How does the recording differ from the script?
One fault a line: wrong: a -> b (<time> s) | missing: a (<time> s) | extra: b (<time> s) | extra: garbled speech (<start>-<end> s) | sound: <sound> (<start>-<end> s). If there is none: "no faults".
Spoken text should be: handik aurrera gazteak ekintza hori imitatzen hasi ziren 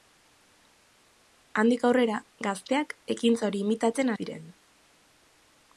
missing: hasi (4.1 s)